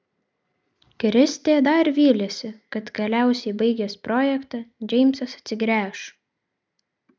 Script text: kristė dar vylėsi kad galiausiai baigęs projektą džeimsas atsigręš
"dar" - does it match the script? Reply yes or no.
yes